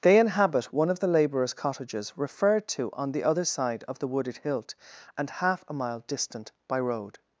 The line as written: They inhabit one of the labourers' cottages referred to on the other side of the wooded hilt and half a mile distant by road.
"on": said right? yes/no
yes